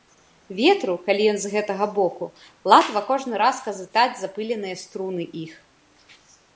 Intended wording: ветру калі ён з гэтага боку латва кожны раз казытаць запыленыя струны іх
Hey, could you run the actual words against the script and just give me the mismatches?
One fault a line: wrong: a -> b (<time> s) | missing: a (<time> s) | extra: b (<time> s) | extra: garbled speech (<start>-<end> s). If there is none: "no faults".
no faults